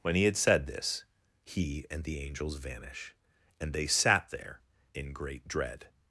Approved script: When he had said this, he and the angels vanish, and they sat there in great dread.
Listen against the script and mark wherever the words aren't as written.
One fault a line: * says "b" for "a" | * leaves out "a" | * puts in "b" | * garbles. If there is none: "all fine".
all fine